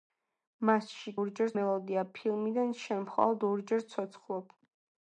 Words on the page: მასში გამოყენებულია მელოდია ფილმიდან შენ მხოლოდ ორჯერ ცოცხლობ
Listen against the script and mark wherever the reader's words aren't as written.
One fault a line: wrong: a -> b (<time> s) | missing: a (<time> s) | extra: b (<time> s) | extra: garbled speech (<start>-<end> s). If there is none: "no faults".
wrong: გამოყენებულია -> ორჯერ (1.2 s)